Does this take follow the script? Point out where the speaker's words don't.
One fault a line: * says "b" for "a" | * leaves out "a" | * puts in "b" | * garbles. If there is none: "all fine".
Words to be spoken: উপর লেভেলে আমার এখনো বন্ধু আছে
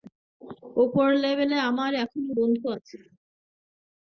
all fine